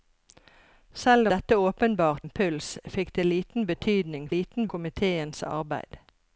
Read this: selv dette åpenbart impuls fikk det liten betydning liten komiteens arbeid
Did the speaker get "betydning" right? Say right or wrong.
right